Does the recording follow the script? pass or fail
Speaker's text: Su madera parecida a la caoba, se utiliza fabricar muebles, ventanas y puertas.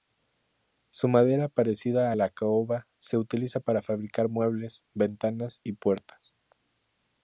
fail